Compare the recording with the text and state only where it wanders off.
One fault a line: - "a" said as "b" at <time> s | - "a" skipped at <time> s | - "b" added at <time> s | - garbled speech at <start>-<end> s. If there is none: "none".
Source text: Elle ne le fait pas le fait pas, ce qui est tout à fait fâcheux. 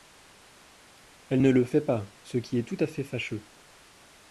- "le fait pas" skipped at 2.1 s